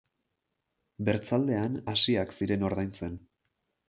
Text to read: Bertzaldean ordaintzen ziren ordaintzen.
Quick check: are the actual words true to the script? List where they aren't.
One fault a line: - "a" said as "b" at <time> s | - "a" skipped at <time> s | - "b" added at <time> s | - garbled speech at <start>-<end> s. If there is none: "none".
- "ordaintzen" said as "hasiak" at 1.9 s